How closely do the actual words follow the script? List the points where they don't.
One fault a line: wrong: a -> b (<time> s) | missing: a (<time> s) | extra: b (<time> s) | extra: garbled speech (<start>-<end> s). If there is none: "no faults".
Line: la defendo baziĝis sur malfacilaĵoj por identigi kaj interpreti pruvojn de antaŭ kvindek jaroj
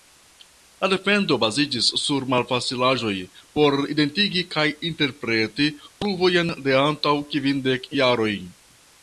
no faults